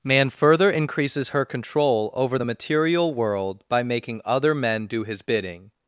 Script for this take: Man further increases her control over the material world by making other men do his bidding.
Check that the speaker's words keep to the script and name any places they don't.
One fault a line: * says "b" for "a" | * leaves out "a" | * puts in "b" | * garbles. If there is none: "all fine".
all fine